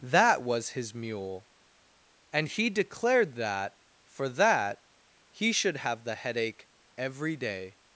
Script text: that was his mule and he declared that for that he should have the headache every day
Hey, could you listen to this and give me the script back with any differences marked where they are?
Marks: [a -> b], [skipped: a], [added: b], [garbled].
that was his mule and he declared that for that he should have the headache every day